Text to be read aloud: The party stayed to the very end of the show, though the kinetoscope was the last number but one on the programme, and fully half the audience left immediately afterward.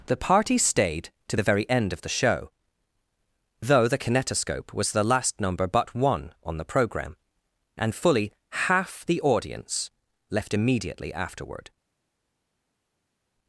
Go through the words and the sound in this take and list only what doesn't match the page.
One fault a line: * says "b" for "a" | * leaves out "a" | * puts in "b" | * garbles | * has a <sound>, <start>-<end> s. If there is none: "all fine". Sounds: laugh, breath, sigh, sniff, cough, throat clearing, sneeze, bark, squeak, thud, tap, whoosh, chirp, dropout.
all fine